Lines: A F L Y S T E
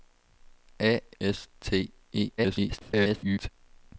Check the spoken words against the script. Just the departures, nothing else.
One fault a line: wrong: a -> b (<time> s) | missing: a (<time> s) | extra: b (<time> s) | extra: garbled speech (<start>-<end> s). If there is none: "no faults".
missing: F L Y (1.0 s)
extra: garbled speech (2.4-3.5 s)